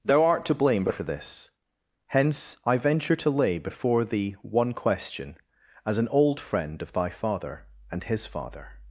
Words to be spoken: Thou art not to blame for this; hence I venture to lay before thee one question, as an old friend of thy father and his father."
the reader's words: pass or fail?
fail